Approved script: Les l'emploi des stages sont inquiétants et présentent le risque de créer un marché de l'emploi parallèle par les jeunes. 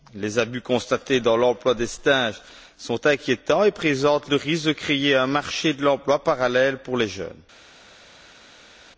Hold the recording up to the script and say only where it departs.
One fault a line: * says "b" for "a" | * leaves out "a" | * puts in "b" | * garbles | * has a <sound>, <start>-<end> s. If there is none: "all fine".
* puts in "abus constatés dans"
* says "pour" for "par"